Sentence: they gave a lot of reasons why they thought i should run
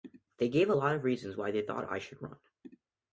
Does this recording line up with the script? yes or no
yes